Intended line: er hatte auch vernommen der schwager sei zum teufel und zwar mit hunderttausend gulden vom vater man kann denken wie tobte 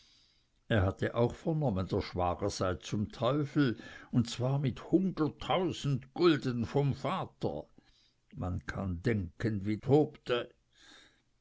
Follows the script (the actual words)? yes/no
yes